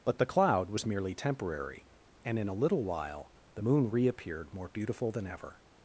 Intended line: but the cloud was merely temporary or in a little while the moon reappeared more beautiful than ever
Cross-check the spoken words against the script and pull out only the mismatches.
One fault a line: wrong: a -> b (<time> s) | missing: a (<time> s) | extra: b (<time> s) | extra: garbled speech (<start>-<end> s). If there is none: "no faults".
wrong: or -> and (2.2 s)